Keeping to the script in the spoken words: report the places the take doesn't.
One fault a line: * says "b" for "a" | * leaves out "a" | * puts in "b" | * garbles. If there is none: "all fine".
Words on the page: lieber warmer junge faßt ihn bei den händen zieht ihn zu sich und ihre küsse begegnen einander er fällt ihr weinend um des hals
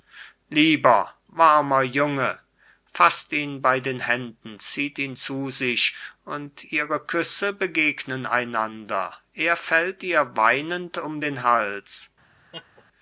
* says "den" for "des"